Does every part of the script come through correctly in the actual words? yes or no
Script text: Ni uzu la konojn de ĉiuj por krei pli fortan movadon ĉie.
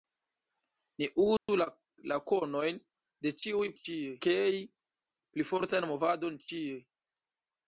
no